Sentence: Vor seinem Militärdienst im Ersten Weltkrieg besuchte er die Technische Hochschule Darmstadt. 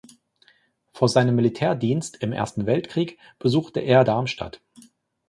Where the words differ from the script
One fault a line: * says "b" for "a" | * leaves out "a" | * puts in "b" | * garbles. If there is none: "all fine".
* leaves out "die Technische Hochschule"